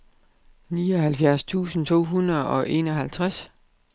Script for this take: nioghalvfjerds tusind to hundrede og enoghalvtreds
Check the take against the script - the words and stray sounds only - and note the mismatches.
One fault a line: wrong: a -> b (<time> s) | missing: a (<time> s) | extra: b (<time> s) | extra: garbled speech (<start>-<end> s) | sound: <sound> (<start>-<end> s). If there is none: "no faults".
no faults